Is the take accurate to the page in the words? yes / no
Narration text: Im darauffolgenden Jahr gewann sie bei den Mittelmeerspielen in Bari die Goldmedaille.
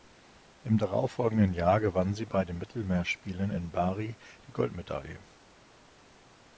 yes